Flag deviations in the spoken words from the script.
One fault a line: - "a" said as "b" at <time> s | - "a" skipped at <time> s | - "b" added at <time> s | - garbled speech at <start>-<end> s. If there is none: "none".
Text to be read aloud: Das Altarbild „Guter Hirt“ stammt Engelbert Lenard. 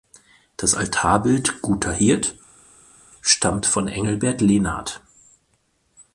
- "von" added at 3.7 s